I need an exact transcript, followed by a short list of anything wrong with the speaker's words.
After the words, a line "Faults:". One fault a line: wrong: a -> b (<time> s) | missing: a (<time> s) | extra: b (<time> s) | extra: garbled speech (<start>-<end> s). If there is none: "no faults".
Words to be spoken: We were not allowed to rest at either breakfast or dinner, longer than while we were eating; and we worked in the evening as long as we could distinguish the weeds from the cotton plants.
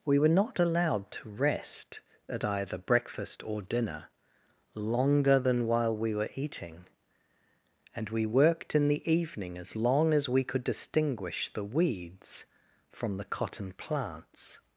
We were not allowed to rest at either breakfast or dinner, longer than while we were eating; and we worked in the evening as long as we could distinguish the weeds from the cotton plants.
Faults:
no faults